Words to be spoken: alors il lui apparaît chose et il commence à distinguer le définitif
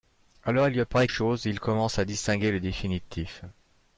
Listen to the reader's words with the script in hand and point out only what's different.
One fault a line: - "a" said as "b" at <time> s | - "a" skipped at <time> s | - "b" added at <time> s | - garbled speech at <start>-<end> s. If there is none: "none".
none